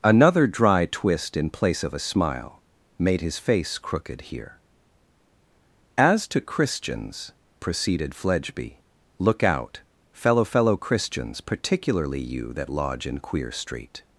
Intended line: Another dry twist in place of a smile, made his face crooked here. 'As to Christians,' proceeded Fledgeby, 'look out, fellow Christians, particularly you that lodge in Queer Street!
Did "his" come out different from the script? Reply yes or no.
no